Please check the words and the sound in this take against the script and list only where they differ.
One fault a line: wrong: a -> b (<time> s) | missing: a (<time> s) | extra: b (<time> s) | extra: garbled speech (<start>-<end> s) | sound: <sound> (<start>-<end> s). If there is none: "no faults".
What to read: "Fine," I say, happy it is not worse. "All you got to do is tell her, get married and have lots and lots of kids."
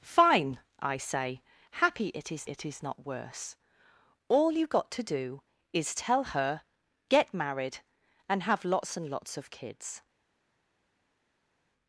extra: it is (2.5 s)